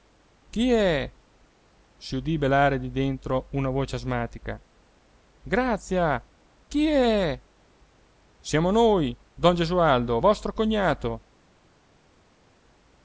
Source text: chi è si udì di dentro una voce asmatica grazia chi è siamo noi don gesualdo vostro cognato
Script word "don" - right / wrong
right